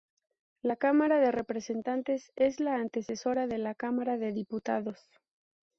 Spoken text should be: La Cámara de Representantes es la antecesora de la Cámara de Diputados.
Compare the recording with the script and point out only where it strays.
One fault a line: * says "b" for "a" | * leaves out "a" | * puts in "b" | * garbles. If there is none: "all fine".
all fine